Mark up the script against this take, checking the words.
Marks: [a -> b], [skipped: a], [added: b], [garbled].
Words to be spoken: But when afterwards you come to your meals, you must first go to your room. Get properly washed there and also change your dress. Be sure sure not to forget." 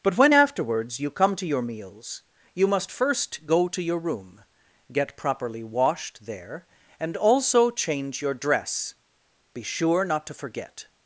But when afterwards you come to your meals, you must first go to your room. Get properly washed there and also change your dress. Be sure [skipped: sure] not to forget."